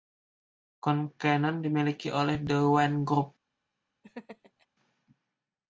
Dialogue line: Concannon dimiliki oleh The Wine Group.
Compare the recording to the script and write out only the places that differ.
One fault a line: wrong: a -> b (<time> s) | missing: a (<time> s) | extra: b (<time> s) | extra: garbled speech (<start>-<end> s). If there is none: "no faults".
no faults